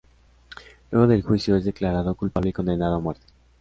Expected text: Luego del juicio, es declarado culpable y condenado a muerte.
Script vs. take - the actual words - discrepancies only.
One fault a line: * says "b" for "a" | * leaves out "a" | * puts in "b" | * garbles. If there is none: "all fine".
all fine